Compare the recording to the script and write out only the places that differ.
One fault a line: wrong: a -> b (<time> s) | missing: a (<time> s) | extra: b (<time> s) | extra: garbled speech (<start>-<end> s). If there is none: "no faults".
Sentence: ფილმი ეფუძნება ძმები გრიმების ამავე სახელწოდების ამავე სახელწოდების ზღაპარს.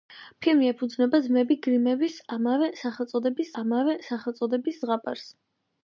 no faults